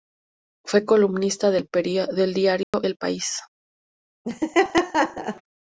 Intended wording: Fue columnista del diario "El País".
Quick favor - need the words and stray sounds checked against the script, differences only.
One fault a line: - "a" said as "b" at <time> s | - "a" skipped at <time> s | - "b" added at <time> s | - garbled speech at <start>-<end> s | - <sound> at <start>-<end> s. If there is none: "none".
- dropout at 2.6-2.7 s
- laugh at 4.2-5.4 s